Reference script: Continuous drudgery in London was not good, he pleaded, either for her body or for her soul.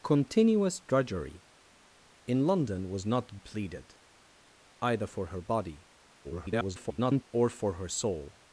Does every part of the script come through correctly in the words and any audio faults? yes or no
no